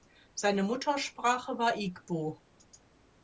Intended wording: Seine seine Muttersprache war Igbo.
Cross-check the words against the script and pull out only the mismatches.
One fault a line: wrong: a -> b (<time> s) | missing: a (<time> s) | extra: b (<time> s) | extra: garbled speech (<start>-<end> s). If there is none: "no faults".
missing: seine (0.6 s)